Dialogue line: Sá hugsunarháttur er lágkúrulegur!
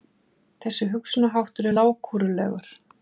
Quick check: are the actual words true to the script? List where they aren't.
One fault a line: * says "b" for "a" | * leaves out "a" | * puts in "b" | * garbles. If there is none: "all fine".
* says "Þessi" for "Sá"